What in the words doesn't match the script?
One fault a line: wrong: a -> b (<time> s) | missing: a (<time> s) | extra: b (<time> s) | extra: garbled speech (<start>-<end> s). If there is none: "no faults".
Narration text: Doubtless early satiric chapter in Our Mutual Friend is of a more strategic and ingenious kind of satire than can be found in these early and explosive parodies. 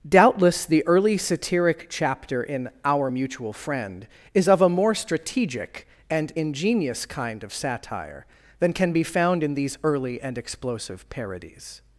extra: the (0.7 s)